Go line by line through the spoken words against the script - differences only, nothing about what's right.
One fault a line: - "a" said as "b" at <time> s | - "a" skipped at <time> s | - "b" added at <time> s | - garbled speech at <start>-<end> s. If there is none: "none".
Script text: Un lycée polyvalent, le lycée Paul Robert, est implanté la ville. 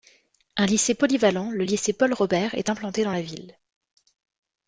- "dans" added at 3.0 s